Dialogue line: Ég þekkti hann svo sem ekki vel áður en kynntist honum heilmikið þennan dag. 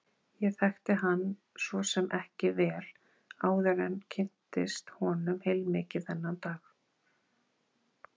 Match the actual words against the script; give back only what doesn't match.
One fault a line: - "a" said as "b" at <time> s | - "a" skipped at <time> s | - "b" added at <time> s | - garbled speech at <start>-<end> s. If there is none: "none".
none